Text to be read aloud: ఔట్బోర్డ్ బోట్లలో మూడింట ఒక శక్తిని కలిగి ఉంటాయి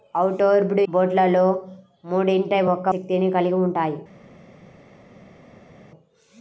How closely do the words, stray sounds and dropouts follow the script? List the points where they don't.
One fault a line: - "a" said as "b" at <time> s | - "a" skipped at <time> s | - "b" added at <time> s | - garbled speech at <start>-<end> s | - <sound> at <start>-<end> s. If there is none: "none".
none